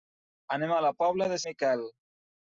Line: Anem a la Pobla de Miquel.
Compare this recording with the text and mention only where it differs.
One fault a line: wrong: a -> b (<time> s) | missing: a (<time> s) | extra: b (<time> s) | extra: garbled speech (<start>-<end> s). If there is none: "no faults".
no faults